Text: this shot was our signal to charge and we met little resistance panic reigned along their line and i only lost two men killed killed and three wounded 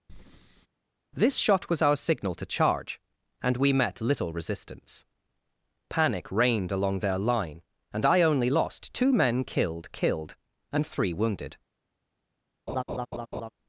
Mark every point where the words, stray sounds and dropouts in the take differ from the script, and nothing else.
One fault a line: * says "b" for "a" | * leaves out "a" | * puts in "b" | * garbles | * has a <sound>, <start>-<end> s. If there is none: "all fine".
* has a breath, 0.1-0.7 s
* has a laugh, 12.7-13.5 s